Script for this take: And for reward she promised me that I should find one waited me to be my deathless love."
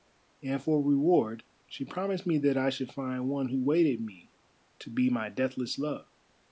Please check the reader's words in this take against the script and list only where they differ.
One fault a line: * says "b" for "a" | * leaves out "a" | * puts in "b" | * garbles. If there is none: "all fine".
* puts in "who"